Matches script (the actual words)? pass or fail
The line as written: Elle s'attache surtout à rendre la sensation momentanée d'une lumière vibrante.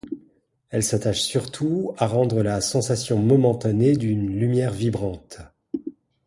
pass